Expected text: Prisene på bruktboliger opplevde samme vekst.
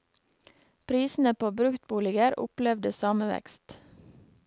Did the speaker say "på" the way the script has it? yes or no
yes